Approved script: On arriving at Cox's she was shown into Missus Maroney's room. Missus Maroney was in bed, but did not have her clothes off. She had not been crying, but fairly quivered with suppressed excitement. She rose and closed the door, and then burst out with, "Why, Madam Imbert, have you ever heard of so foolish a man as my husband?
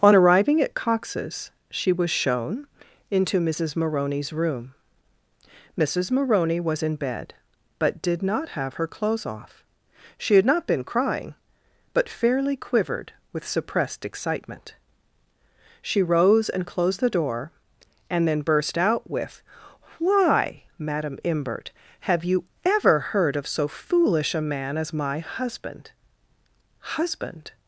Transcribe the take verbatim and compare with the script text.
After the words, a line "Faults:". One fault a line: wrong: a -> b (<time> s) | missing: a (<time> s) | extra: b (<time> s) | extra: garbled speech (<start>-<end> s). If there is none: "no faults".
On arriving at Cox's she was shown into Missus Maroney's room. Missus Maroney was in bed, but did not have her clothes off. She had not been crying, but fairly quivered with suppressed excitement. She rose and closed the door, and then burst out with, "Why, Madam Imbert, have you ever heard of so foolish a man as my husband husband?
Faults:
extra: husband (26.8 s)